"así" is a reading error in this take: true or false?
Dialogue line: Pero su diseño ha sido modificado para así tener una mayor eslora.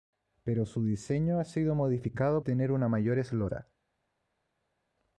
true